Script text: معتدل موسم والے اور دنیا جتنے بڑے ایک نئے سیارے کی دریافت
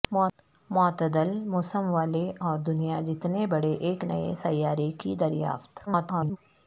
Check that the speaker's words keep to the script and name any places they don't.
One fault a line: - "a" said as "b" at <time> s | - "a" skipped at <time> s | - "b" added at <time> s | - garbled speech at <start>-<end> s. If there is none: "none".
- garbled speech at 5.9-6.4 s